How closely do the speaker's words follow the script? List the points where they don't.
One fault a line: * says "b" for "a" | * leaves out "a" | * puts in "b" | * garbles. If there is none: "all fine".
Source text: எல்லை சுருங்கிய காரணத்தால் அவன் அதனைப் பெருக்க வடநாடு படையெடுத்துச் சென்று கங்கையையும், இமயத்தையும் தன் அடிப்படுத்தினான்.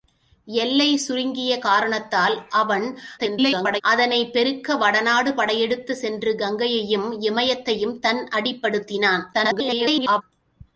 * garbles
* garbles